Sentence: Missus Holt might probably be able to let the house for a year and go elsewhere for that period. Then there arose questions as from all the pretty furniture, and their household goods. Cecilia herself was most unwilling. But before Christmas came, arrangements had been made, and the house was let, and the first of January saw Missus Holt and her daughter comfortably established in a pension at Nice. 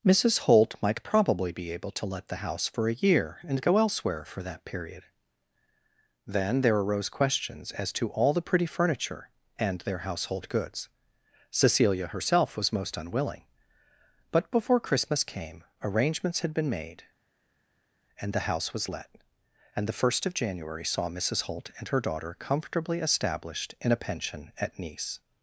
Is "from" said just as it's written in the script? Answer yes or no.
no